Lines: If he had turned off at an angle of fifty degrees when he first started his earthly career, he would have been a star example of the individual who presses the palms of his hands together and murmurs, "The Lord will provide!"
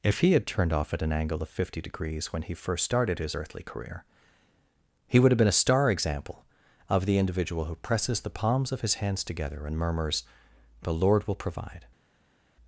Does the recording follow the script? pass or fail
pass